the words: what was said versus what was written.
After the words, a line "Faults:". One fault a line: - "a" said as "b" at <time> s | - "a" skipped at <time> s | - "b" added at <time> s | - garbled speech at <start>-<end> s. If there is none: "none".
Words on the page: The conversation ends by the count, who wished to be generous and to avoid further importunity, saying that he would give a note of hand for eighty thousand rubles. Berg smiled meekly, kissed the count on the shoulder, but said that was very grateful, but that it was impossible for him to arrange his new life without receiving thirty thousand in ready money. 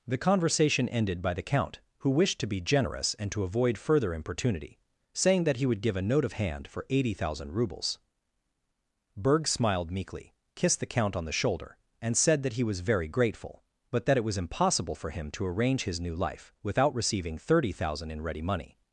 The conversation ended by the count, who wished to be generous and to avoid further importunity, saying that he would give a note of hand for eighty thousand rubles. Berg smiled meekly, kissed the count on the shoulder, and said that he was very grateful, but that it was impossible for him to arrange his new life without receiving thirty thousand in ready money.
Faults:
- "ends" said as "ended" at 0.9 s
- "but" said as "and" at 12.0 s
- "he" added at 12.5 s